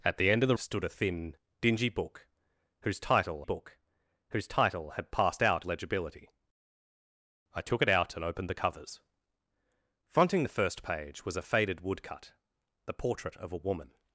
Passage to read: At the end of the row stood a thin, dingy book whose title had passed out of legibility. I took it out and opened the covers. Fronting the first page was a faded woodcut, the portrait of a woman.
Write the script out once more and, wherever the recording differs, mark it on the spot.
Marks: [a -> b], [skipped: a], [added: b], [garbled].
At the end of the [skipped: row] stood a thin, dingy book whose title [added: book whose title] had passed out [skipped: of] legibility. I took it out and opened the covers. Fronting the first page was a faded woodcut, the portrait of a woman.